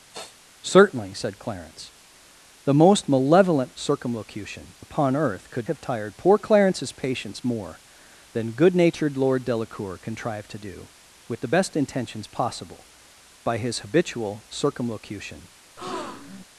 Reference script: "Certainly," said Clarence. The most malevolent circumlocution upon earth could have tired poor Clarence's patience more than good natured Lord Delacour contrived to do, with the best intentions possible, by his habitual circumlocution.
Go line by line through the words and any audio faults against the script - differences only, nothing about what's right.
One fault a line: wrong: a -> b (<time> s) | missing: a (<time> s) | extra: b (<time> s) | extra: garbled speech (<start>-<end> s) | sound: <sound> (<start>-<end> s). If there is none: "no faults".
sound: sniff (0.1-0.4 s)
sound: breath (15.8-16.4 s)